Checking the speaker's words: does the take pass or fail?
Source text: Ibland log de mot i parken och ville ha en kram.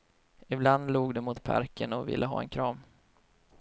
pass